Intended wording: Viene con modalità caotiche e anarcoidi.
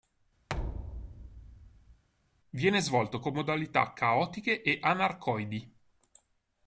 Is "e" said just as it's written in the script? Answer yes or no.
yes